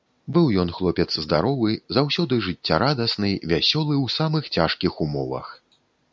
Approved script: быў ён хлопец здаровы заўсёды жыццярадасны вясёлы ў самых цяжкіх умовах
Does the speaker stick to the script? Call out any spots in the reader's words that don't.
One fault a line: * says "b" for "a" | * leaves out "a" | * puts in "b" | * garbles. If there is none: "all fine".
all fine